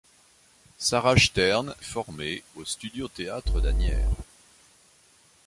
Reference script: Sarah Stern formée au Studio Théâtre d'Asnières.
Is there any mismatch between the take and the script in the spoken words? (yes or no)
no